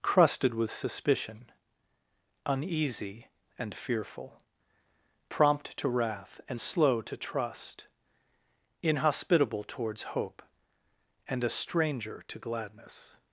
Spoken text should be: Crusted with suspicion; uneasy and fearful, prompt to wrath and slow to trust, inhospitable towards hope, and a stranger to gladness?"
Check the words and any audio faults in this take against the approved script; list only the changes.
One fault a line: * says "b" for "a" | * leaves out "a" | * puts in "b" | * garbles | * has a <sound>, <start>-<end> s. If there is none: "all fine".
all fine